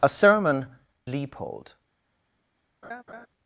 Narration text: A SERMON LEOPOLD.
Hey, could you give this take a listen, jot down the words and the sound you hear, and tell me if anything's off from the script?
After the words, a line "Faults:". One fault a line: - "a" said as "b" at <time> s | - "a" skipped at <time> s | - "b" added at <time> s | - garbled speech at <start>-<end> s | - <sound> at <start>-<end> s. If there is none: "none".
A SERMON LEOPOLD.
Faults:
- laugh at 2.8-3.3 s